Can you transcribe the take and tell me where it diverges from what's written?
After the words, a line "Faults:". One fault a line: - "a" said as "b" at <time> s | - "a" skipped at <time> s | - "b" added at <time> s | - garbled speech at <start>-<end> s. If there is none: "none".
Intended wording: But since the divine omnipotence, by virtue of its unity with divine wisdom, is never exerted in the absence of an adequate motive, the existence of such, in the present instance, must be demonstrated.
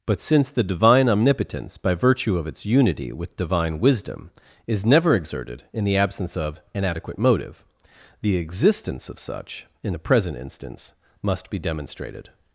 But since the divine omnipotence, by virtue of its unity with divine wisdom, is never exerted in the absence of an adequate motive, the existence of such, in the present instance, must be demonstrated.
Faults:
none